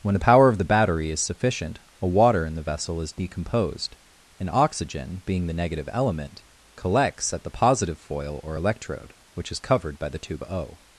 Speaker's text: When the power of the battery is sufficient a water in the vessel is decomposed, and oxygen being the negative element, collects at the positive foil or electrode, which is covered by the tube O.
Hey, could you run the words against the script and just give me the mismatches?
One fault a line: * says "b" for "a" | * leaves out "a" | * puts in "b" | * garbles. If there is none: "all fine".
all fine